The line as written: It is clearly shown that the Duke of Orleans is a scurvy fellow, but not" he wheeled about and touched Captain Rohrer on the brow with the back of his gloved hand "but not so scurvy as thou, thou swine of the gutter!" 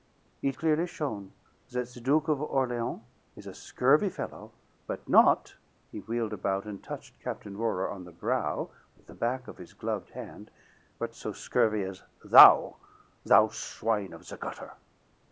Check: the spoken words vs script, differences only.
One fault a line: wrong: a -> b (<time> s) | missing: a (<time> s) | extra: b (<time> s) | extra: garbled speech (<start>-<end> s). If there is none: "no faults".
missing: is (0.6 s)
missing: not (11.1 s)